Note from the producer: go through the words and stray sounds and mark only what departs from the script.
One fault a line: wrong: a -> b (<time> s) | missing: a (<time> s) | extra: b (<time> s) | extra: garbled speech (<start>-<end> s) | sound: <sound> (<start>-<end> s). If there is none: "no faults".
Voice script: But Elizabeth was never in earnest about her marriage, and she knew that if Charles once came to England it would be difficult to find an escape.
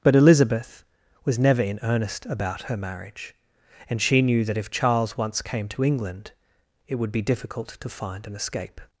no faults